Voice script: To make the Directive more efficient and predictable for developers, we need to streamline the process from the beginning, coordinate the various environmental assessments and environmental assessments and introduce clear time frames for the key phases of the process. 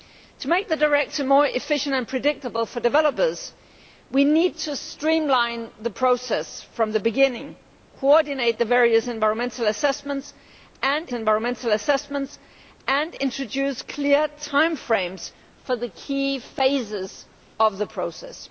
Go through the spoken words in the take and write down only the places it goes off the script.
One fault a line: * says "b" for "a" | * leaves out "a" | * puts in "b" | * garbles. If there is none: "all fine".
all fine